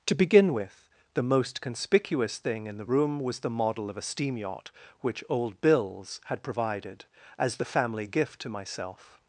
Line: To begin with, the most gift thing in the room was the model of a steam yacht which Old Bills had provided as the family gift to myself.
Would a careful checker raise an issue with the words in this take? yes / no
yes